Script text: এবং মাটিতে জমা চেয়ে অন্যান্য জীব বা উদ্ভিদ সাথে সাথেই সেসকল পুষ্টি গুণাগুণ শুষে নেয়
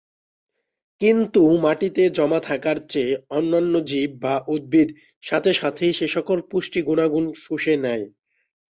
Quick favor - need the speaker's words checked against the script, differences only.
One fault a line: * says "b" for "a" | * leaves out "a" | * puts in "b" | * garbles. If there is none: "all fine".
* says "কিন্তু" for "এবং"
* puts in "থাকার"